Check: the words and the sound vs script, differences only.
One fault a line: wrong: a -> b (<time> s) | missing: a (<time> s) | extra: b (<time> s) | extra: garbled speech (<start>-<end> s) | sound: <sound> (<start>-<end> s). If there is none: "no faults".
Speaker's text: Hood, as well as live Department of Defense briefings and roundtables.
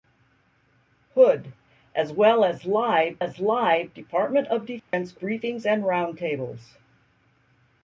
extra: as live (3.2 s)
sound: dropout (4.8-4.9 s)